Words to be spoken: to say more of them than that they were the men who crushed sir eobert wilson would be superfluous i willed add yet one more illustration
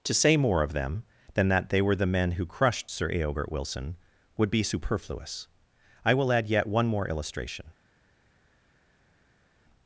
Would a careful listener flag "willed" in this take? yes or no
yes